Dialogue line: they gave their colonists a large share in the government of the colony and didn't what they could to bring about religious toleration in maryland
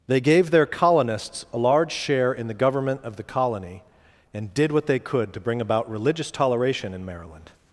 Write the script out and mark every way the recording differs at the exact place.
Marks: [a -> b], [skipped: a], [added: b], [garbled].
they gave their colonists a large share in the government of the colony and [didn't -> did] what they could to bring about religious toleration in maryland